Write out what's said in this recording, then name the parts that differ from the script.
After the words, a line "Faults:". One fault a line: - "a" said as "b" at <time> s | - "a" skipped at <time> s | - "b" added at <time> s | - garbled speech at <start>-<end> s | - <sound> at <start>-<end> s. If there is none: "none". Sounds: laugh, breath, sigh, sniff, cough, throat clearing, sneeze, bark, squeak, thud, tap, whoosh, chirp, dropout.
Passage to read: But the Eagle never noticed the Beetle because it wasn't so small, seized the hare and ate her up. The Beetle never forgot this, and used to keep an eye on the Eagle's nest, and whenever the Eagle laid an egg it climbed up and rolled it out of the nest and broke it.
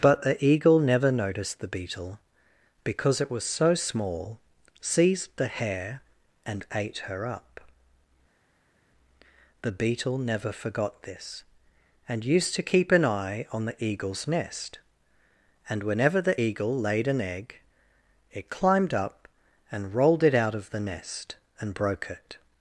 But the Eagle never noticed the Beetle because it was so small, seized the hare and ate her up. The Beetle never forgot this, and used to keep an eye on the Eagle's nest, and whenever the Eagle laid an egg it climbed up and rolled it out of the nest and broke it.
Faults:
- "wasn't" said as "was" at 3.3 s